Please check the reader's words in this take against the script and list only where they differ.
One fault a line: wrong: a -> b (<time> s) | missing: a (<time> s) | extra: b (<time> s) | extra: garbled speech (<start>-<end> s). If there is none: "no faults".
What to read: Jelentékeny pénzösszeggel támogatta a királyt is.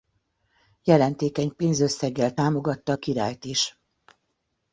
no faults